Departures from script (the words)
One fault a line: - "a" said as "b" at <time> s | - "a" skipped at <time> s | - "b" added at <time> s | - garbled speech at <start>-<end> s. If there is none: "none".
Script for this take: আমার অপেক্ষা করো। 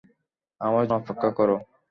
none